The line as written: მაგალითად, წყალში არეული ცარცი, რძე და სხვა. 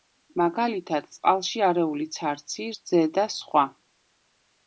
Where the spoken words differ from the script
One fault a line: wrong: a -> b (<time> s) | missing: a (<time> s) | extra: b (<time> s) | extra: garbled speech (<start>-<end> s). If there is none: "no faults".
no faults